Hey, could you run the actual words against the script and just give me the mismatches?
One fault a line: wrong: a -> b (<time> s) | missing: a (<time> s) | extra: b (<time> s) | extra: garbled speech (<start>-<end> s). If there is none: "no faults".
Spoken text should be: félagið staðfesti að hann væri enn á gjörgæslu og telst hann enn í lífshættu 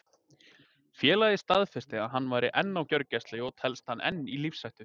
no faults